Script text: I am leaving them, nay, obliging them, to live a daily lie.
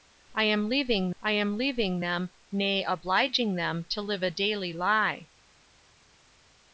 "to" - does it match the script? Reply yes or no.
yes